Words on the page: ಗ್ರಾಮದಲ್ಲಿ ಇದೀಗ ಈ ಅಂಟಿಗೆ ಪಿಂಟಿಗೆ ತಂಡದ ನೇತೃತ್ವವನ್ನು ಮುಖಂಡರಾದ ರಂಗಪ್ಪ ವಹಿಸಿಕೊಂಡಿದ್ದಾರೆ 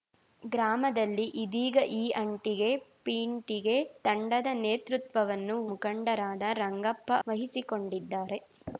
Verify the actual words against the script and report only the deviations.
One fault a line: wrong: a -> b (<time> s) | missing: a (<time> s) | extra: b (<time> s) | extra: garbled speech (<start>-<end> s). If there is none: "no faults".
no faults